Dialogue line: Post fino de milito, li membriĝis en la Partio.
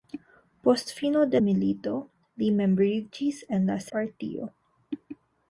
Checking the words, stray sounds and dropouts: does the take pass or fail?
pass